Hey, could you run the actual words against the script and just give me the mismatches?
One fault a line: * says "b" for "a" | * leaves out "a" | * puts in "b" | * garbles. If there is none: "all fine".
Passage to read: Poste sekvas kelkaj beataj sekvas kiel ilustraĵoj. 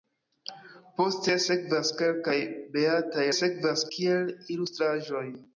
all fine